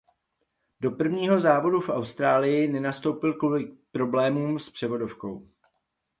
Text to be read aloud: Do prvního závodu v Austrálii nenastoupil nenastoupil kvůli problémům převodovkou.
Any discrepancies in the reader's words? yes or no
yes